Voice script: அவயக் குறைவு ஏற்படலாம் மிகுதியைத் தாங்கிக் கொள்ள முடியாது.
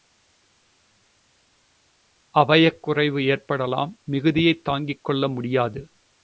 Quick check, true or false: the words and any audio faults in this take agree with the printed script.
true